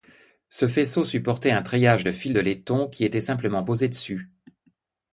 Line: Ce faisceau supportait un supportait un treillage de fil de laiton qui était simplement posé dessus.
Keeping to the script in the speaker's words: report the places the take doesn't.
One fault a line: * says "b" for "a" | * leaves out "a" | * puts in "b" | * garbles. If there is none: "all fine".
* leaves out "supportait un"